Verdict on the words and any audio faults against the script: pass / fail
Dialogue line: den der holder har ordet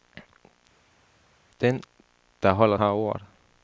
pass